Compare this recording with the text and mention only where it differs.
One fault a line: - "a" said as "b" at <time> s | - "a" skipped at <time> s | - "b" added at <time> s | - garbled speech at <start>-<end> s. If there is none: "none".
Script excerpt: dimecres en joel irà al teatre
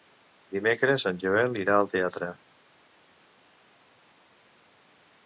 none